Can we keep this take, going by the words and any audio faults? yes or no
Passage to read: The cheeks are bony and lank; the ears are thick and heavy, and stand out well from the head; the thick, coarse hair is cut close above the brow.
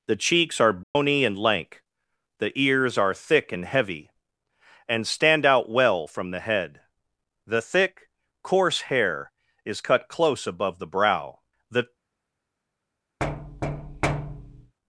no